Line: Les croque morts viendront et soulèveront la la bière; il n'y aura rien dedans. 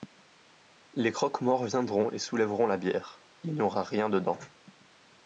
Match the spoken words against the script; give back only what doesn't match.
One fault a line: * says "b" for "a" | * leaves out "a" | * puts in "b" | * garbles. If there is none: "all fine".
* leaves out "la"